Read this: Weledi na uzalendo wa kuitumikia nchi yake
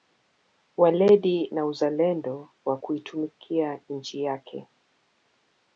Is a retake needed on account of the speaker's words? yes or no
no